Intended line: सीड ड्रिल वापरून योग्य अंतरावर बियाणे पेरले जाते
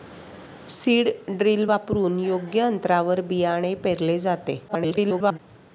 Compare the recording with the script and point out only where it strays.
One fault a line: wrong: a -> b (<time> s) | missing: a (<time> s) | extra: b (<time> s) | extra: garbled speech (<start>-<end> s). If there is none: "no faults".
extra: garbled speech (4.7-5.4 s)